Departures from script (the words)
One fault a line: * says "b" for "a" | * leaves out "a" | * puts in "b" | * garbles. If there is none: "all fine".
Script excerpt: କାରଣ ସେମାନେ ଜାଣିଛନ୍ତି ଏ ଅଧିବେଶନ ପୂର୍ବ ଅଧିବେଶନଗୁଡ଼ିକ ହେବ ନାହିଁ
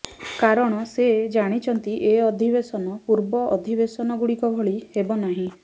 * says "ସେ" for "ସେମାନେ"
* puts in "ଭଳି"